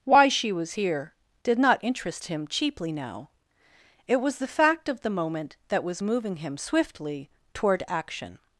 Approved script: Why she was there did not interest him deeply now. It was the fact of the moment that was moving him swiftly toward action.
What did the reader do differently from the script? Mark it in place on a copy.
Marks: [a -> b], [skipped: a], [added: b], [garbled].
Why she was [there -> here] did not interest him [deeply -> cheaply] now. It was the fact of the moment that was moving him swiftly toward action.